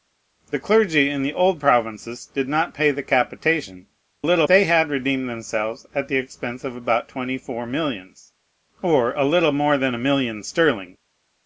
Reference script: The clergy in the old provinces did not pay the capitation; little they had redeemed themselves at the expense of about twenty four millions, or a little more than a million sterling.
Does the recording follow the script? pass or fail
pass